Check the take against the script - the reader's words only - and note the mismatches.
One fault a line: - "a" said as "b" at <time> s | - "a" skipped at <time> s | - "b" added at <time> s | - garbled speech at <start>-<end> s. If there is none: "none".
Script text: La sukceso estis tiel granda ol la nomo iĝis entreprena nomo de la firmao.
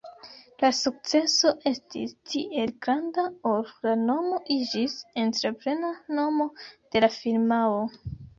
none